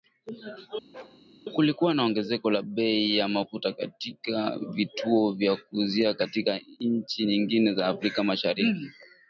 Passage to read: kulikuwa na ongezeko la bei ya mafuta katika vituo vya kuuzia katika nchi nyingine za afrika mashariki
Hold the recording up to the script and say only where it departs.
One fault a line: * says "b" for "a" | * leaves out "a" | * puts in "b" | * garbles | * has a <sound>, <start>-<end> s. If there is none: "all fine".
* has a bark, 0.9-1.2 s